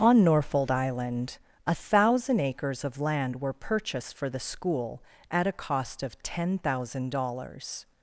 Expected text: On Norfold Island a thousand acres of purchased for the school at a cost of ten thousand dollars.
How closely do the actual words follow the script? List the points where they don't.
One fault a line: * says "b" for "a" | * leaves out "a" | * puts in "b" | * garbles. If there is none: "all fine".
* puts in "land were"